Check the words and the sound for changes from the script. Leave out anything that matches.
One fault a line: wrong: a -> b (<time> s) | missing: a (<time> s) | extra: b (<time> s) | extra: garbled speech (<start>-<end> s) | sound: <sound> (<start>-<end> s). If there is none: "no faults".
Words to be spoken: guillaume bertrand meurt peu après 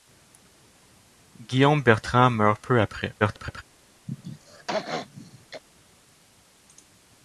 extra: garbled speech (3.2-3.6 s)
sound: throat clearing (4.1-5.6 s)